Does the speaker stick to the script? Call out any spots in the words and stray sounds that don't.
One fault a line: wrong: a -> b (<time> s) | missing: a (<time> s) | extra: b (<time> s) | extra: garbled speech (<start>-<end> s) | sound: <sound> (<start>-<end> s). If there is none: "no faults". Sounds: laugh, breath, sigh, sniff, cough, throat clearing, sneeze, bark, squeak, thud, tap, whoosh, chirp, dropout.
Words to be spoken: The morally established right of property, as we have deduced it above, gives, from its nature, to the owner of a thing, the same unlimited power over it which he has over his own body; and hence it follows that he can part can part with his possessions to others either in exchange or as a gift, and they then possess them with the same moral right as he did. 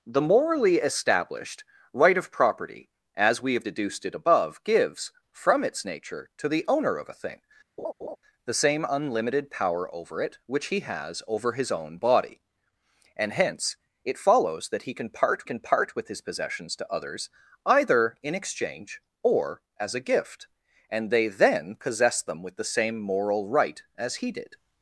sound: laugh (7.8-8.2 s)